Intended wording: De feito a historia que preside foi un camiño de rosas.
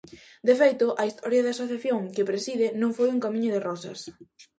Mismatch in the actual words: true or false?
true